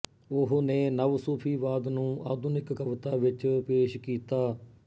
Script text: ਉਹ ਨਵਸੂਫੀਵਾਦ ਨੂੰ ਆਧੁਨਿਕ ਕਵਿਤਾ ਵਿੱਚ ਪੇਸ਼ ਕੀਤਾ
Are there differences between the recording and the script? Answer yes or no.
yes